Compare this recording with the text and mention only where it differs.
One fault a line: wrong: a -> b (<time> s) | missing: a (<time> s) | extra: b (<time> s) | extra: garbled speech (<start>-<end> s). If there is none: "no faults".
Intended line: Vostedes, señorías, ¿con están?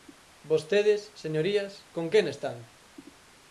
extra: quen (2.1 s)